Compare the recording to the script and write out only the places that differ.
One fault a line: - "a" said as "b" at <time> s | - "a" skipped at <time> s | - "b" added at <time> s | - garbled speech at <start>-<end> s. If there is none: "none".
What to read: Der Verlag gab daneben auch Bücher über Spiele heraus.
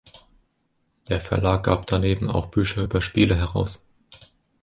none